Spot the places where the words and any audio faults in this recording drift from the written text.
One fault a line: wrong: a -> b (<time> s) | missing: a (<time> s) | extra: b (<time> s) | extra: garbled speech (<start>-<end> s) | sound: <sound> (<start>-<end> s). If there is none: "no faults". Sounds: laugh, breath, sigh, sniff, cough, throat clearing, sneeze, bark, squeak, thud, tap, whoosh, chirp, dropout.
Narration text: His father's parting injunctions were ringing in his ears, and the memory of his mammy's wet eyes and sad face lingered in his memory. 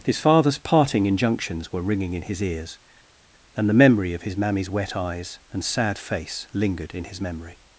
no faults